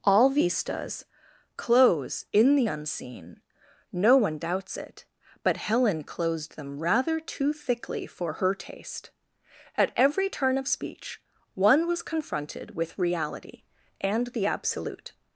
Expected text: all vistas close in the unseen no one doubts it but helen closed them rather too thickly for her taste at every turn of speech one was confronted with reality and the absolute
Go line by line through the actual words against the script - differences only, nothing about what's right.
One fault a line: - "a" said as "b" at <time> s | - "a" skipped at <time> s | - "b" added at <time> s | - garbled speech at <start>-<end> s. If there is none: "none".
none